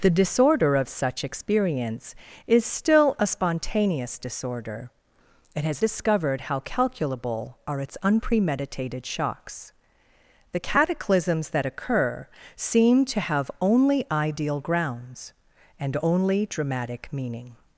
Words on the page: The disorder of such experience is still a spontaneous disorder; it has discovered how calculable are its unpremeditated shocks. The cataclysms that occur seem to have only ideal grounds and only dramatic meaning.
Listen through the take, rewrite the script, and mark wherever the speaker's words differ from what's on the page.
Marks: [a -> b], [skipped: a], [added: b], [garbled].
The disorder of such experience is still a spontaneous disorder; it has discovered how calculable are its unpremeditated shocks. The cataclysms that occur seem to have only ideal grounds and only dramatic meaning.